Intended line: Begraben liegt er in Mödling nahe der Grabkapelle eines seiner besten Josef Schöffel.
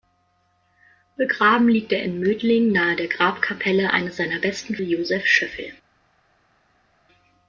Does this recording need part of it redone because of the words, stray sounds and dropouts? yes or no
no